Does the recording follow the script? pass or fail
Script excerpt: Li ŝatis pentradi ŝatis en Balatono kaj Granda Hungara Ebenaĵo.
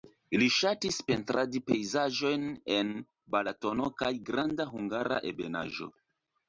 fail